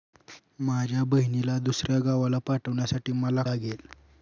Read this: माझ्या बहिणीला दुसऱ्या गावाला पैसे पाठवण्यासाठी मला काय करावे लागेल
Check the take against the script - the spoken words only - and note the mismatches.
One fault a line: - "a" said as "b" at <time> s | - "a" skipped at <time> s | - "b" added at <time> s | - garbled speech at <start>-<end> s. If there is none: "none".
- "पैसे" skipped at 2.4 s
- "काय करावे" skipped at 3.4 s